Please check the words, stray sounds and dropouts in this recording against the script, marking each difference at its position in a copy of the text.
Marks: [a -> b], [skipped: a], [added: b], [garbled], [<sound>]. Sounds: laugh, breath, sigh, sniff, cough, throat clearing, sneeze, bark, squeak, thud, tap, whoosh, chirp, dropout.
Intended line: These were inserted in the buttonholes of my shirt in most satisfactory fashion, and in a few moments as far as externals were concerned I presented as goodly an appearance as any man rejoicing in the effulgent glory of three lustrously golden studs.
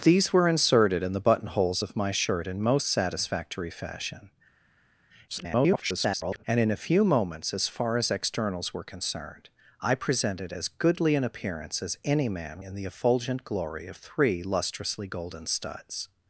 These were inserted in the buttonholes of my shirt in most satisfactory fashion, [garbled] and in a few moments as far as externals were concerned I presented as goodly an appearance as any man [skipped: rejoicing] in the effulgent glory of three lustrously golden studs.